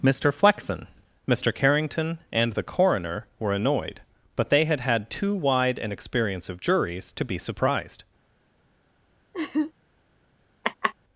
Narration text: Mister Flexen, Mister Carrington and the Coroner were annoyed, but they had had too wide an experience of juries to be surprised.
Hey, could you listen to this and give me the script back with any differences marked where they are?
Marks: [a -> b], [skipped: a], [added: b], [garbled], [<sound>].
Mister Flexen, Mister Carrington and the Coroner were annoyed, but they had had too wide an experience of juries to be surprised. [laugh] [laugh]